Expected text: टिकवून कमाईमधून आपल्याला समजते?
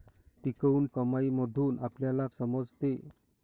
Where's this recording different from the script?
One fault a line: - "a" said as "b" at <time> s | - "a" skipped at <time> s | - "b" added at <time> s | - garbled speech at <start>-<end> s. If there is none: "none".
none